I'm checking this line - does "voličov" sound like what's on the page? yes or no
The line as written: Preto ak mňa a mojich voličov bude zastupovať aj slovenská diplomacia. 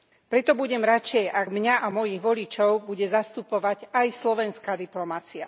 yes